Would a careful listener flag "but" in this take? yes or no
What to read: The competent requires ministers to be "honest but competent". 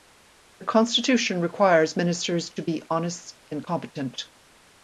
yes